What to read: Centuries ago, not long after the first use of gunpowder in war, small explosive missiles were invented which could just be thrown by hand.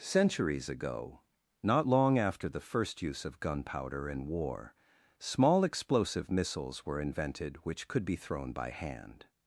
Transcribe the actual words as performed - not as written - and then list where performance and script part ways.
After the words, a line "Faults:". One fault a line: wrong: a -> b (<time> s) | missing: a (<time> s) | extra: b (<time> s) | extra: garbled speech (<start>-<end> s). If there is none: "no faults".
Centuries ago, not long after the first use of gunpowder in war, small explosive missiles were invented which could be thrown by hand.
Faults:
missing: just (8.1 s)